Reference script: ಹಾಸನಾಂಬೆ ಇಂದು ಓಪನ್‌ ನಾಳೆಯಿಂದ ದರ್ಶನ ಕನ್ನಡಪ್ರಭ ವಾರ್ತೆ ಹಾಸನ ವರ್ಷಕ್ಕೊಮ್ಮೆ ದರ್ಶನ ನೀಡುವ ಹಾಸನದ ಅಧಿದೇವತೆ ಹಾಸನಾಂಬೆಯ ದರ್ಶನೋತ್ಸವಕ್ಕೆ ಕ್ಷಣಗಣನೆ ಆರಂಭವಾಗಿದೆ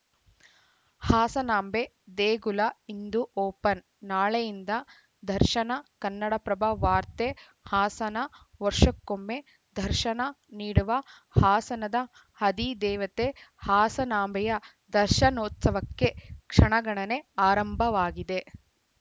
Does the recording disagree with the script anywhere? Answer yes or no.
yes